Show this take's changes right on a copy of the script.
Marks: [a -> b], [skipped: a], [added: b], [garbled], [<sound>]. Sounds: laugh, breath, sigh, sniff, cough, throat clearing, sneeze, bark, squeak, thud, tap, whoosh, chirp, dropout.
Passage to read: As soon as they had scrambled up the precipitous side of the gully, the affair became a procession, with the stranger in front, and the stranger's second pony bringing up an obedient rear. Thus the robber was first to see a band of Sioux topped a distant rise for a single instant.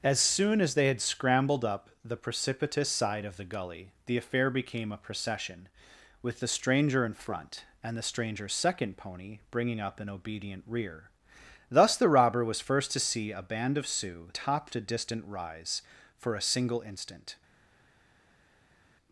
As soon as they had scrambled up the precipitous side of the gully, the affair became a procession, with the stranger in front, and the stranger's second pony bringing up an obedient rear. Thus the robber was first to see a band of Sioux topped a distant rise for a single instant.